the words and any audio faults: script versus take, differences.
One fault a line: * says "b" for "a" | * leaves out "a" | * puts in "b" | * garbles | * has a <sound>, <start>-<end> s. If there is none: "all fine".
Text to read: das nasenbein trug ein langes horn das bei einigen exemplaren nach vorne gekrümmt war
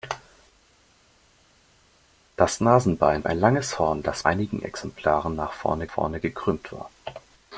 * leaves out "trug"
* leaves out "bei"
* puts in "vorne"